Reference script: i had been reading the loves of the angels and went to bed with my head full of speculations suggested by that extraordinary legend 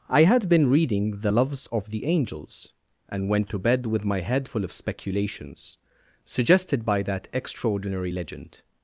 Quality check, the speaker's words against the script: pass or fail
pass